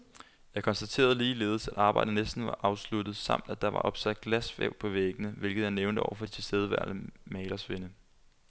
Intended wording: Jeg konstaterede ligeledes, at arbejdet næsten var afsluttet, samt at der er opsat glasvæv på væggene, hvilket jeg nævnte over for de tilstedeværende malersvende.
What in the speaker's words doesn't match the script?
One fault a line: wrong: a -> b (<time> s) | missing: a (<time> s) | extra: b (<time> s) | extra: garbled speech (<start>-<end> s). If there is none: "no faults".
wrong: er -> var (3.7 s)